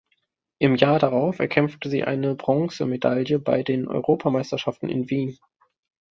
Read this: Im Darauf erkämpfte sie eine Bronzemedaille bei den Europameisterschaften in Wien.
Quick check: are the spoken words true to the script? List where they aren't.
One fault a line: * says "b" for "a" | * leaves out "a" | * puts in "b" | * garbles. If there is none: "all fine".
* puts in "Jahr"